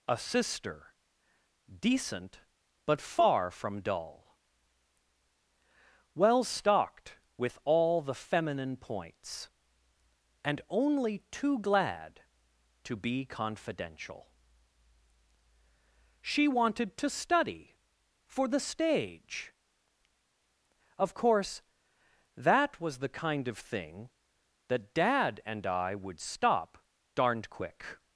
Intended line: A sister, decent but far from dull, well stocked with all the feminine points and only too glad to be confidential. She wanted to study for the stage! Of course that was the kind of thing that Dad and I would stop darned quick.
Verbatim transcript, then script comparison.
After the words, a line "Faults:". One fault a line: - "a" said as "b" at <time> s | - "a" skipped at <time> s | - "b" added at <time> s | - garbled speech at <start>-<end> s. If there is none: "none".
A sister, decent but far from dull, well stocked with all the feminine points and only too glad to be confidential. She wanted to study for the stage! Of course that was the kind of thing that Dad and I would stop darned quick.
Faults:
none